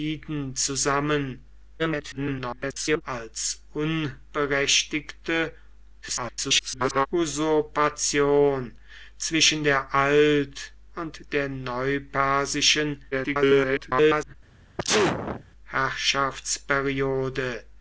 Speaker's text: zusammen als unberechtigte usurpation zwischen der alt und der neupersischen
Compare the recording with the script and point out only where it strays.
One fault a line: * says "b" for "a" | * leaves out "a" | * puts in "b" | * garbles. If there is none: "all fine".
* garbles
* garbles
* garbles